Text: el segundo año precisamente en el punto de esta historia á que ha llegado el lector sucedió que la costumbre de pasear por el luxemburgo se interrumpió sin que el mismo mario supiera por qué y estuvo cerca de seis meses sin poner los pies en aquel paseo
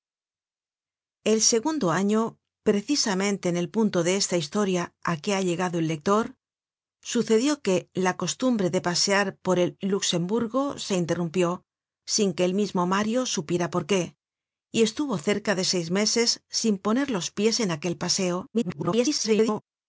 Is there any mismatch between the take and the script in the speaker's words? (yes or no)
yes